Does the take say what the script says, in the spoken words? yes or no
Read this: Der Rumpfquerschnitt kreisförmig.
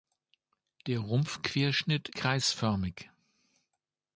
yes